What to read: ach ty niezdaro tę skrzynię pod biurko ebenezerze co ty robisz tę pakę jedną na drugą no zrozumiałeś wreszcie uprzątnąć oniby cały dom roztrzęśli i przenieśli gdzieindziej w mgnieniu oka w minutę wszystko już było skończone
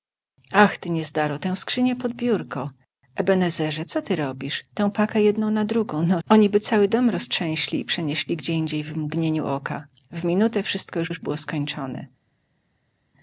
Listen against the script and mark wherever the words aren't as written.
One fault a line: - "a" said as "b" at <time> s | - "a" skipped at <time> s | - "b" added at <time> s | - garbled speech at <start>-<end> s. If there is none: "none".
- "zrozumiałeś wreszcie uprzątnąć" skipped at 6.2 s
- "już" added at 11.1 s